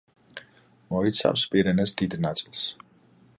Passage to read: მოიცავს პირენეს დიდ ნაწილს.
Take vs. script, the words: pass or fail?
pass